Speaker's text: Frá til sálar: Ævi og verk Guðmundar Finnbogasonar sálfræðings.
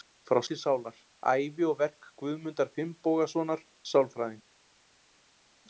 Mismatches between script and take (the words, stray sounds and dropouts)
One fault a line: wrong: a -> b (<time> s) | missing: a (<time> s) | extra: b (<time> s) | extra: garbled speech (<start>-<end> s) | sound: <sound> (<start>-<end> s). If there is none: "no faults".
no faults